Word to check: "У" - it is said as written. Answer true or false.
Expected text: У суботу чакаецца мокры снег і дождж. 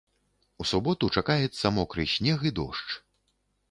true